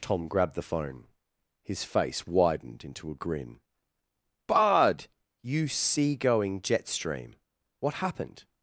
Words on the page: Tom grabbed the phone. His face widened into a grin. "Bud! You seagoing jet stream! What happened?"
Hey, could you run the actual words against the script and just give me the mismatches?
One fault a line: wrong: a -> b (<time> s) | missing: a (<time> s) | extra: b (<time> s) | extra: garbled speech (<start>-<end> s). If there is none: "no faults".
no faults